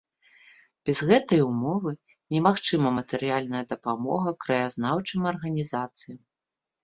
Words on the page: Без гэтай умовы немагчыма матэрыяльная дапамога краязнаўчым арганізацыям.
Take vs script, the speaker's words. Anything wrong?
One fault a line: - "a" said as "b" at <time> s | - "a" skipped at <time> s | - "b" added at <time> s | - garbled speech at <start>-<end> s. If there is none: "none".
none